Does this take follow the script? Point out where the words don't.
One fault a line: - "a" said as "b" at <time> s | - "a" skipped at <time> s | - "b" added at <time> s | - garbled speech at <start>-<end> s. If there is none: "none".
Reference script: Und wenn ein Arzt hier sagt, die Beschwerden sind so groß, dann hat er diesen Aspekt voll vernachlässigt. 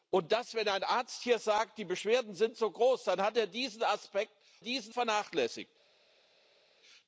- "voll" said as "diesen" at 4.6 s